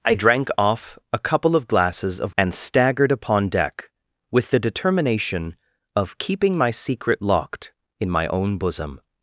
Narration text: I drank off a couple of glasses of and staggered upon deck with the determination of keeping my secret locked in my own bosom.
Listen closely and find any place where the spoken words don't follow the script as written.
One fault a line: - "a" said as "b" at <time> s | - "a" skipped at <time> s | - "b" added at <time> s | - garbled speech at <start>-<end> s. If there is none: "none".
none